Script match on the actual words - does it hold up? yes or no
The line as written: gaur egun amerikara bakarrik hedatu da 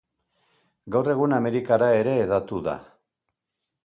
no